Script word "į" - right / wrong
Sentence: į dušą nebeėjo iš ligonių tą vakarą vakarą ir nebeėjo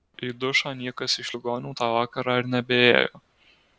right